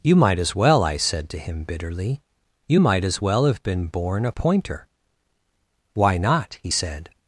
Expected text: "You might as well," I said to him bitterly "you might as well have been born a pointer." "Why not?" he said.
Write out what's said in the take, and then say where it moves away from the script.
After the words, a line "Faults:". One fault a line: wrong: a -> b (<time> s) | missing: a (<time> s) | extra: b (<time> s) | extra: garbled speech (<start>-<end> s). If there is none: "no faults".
"You might as well," I said to him bitterly "you might as well have been born a pointer." "Why not?" he said.
Faults:
no faults